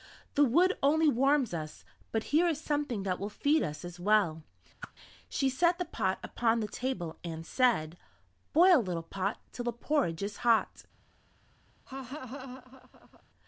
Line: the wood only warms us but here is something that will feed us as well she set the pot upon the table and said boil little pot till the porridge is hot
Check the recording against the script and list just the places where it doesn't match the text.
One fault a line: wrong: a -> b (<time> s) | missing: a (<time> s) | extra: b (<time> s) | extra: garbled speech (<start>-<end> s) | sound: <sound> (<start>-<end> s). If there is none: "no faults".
sound: whoosh (4.8-4.9 s)
sound: laugh (11.9-13.2 s)